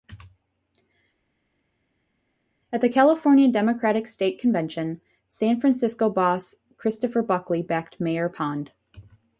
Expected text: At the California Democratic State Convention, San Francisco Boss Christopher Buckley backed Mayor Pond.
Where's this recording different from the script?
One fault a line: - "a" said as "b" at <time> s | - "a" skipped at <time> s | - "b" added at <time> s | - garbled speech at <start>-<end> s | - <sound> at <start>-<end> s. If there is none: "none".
none